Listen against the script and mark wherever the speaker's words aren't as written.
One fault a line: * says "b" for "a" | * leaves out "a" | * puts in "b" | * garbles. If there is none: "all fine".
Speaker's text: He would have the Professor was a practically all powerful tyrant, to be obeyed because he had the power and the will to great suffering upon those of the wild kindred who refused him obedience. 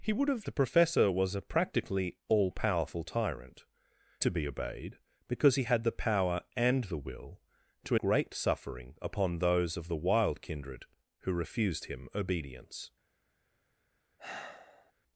all fine